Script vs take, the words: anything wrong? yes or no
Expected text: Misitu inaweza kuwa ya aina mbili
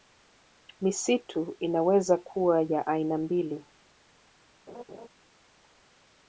no